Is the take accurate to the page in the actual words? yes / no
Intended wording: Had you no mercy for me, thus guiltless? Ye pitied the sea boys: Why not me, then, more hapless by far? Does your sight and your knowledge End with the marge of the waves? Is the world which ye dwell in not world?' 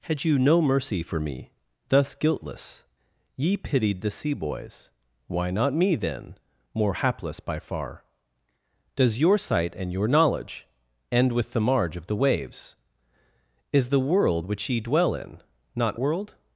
yes